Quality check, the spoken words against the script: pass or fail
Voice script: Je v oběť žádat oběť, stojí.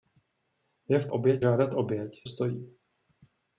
pass